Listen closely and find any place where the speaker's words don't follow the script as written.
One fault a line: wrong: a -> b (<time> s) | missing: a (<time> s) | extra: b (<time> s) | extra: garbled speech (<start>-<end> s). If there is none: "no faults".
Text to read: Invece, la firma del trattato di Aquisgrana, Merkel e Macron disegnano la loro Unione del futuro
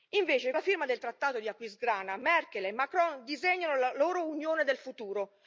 no faults